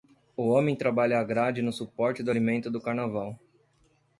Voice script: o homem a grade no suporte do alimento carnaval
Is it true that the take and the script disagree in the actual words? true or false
true